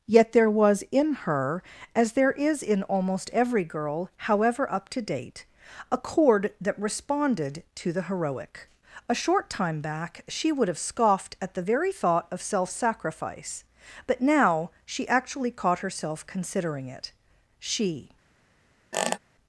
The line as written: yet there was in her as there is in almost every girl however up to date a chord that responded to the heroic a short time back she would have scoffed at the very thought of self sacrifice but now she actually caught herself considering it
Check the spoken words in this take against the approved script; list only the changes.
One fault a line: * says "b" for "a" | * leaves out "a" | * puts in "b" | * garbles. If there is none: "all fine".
* puts in "she"